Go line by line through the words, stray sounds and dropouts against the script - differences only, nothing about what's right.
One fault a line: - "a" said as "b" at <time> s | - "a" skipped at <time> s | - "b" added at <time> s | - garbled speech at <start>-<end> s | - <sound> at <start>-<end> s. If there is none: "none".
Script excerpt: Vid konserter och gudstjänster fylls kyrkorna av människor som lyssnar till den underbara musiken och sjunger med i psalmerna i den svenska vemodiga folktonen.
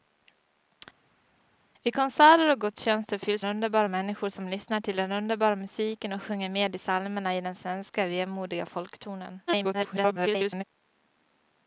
- "kyrkorna" said as "underbara" at 3.4 s
- garbled speech at 9.5-10.6 s